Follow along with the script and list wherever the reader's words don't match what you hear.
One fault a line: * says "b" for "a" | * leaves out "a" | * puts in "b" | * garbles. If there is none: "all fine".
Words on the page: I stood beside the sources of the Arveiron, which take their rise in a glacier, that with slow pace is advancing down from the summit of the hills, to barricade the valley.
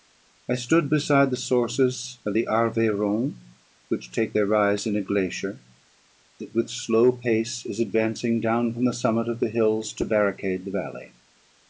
all fine